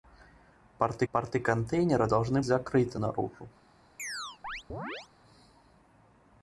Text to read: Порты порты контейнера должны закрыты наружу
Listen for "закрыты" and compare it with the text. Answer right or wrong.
right